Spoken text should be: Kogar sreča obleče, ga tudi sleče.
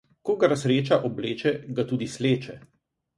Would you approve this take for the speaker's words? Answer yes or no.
yes